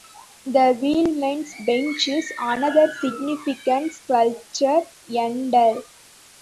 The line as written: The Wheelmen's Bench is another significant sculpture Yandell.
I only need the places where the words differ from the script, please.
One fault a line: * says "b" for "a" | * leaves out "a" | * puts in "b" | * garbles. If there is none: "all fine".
all fine